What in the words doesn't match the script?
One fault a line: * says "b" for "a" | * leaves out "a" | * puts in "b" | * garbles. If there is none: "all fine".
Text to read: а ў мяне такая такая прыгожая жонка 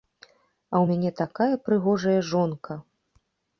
* leaves out "такая"